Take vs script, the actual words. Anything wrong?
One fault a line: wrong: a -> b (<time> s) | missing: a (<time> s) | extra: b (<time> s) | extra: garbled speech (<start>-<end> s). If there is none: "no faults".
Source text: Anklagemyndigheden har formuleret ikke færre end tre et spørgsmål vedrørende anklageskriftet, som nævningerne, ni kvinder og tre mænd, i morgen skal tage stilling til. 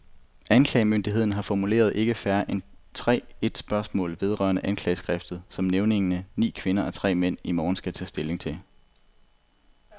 no faults